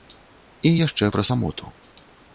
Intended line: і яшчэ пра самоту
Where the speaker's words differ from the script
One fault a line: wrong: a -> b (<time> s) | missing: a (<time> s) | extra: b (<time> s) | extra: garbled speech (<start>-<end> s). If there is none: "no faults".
no faults